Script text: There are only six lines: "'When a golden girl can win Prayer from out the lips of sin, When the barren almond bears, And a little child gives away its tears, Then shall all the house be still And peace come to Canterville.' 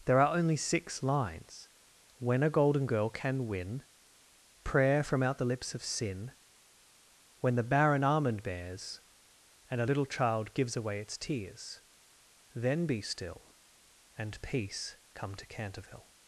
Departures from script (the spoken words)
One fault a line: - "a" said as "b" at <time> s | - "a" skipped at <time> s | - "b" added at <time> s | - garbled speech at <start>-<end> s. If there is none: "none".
- "shall all the house" skipped at 12.9 s